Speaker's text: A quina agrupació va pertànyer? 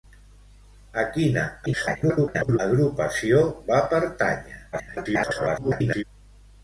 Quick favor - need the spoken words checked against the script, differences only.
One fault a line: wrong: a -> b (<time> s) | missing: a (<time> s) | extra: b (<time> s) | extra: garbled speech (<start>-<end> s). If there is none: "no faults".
extra: garbled speech (1.7-2.6 s)
extra: garbled speech (4.7-6.0 s)